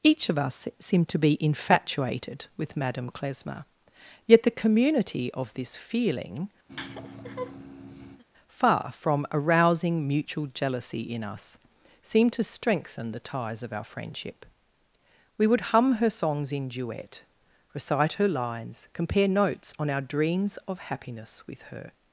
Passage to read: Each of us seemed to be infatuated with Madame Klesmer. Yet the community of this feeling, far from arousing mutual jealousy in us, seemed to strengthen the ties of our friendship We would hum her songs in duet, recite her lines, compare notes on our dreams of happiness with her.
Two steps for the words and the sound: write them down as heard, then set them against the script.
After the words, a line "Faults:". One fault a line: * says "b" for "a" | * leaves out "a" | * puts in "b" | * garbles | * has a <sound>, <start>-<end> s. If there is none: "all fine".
Each of us seemed to be infatuated with Madame Klesmer. Yet the community of this feeling, far from arousing mutual jealousy in us, seemed to strengthen the ties of our friendship We would hum her songs in duet, recite her lines, compare notes on our dreams of happiness with her.
Faults:
* has a laugh, 6.7-8.2 s